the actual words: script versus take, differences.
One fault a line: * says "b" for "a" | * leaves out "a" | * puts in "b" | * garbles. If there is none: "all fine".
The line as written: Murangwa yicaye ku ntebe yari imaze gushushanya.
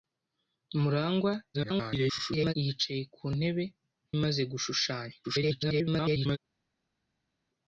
* garbles
* leaves out "yari"
* garbles